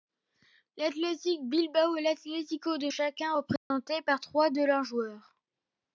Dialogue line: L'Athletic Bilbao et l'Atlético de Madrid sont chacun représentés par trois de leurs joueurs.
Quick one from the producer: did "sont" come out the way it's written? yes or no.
no